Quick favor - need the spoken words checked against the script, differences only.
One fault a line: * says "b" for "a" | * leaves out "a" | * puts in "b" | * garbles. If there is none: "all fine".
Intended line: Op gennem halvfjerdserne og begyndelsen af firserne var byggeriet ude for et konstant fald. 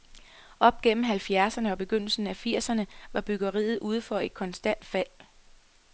all fine